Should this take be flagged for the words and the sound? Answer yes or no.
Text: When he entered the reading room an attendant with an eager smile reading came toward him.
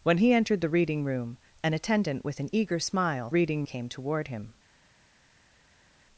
no